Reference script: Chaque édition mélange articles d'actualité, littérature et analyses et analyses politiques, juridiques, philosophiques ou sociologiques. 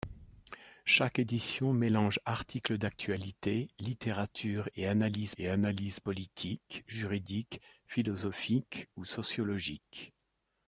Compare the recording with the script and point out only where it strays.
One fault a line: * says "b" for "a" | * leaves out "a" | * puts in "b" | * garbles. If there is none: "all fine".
all fine